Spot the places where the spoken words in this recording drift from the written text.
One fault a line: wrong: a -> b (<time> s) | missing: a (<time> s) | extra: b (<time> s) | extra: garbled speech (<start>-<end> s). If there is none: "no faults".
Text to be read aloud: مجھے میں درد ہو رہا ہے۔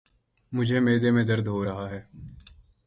extra: معدے (0.8 s)